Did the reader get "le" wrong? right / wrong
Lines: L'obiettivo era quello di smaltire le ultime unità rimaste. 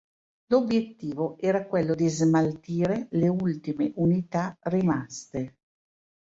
right